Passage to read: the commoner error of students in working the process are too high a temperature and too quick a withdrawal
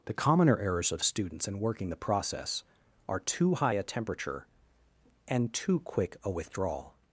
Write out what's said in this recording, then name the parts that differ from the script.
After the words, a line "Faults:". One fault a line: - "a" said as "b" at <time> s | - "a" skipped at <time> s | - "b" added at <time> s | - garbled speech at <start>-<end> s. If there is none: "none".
the commoner errors of students in working the process are too high a temperature and too quick a withdrawal
Faults:
- "error" said as "errors" at 0.6 s